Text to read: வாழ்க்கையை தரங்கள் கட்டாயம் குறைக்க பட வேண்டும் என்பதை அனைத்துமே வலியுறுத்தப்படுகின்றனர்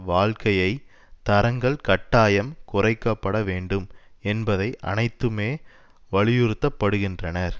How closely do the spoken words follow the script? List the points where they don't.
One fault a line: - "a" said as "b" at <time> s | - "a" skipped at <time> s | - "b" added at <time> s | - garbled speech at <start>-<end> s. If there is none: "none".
none